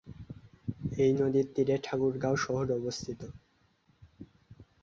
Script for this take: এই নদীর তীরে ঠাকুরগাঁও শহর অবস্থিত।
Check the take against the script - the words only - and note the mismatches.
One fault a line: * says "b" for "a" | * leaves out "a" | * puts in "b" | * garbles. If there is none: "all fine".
all fine